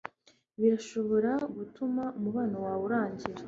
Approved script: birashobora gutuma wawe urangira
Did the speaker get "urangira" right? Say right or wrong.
right